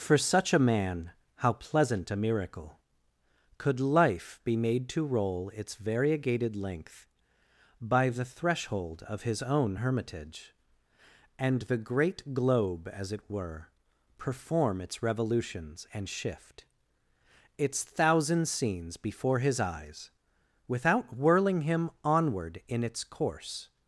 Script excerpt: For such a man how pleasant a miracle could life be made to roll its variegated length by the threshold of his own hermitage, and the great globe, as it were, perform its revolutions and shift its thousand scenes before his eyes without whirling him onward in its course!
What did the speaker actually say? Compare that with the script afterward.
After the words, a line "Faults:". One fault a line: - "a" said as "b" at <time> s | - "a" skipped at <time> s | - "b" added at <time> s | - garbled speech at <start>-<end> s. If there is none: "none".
For such a man how pleasant a miracle could life be made to roll its variegated length by the threshold of his own hermitage, and the great globe, as it were, perform its revolutions and shift its thousand scenes before his eyes without whirling him onward in its course!
Faults:
none